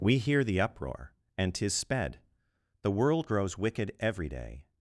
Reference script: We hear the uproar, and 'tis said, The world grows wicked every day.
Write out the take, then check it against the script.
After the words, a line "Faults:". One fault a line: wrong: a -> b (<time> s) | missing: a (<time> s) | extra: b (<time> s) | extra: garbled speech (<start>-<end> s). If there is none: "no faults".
We hear the uproar, and 'tis sped, The world grows wicked every day.
Faults:
wrong: said -> sped (1.7 s)